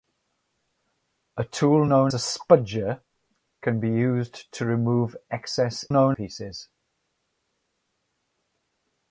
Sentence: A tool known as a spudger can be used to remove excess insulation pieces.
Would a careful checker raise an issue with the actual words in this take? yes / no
yes